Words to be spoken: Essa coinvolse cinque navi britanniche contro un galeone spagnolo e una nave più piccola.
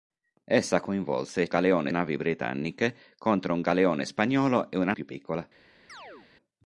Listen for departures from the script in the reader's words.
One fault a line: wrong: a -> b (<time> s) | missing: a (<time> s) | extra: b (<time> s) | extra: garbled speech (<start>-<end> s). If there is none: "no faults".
wrong: cinque -> galeone (1.5 s)
missing: nave (4.9 s)